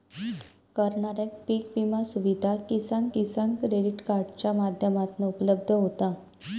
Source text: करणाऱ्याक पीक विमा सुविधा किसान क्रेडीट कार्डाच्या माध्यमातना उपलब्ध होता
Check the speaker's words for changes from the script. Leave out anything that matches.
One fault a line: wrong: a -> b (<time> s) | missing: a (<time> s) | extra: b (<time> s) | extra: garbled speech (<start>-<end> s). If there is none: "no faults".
extra: किसान (3.1 s)